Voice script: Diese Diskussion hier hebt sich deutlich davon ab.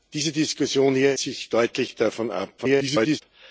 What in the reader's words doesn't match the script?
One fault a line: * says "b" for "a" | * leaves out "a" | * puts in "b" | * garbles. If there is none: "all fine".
* leaves out "hebt"
* garbles